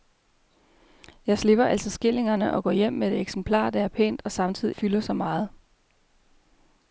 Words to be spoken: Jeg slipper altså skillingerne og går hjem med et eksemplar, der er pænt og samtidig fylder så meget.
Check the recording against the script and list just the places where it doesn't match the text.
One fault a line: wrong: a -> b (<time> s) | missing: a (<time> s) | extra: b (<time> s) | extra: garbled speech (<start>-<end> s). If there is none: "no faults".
no faults